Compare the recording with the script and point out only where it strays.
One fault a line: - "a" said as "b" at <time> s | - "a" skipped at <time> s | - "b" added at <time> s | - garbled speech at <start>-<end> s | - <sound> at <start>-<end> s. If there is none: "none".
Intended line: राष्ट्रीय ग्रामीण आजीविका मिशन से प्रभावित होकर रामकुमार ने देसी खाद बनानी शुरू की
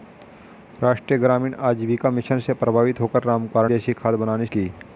- "ने" skipped at 3.7 s
- "शुरू" skipped at 4.5 s